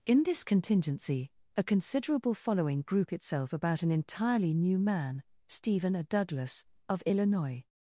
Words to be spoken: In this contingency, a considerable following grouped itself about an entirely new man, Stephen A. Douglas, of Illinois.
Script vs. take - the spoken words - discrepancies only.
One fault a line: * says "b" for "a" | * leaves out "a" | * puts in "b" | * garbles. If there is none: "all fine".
* says "group" for "grouped"